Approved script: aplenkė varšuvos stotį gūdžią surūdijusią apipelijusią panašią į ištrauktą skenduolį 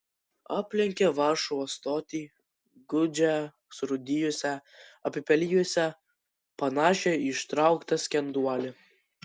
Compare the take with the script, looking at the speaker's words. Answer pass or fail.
pass